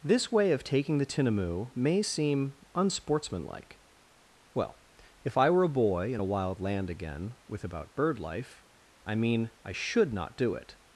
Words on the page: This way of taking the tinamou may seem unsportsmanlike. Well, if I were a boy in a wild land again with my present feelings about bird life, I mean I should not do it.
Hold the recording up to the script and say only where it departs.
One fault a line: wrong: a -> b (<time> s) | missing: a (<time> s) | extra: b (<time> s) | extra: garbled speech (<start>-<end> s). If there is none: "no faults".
missing: my present feelings (7.6 s)